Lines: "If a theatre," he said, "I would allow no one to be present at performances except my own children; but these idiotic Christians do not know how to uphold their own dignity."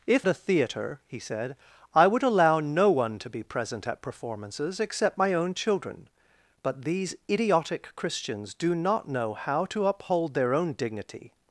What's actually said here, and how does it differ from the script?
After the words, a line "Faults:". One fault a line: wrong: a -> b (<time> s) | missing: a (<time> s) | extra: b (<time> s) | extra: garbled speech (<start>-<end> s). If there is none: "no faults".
"If a theatre," he said, "I would allow no one to be present at performances except my own children; but these idiotic Christians do not know how to uphold their own dignity."
Faults:
no faults